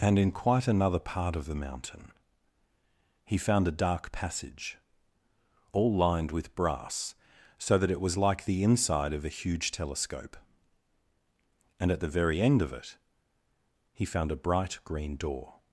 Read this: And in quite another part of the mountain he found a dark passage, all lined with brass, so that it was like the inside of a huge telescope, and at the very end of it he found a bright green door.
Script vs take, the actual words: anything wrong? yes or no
no